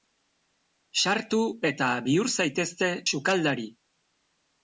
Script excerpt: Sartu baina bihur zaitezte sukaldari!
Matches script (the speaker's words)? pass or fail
fail